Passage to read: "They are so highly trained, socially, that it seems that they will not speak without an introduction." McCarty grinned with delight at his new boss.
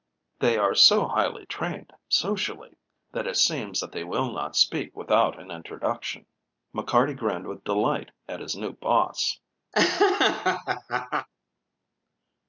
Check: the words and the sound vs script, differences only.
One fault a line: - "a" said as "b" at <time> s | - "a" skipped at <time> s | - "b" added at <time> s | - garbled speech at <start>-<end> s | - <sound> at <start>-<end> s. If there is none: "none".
- laugh at 9.7-11.3 s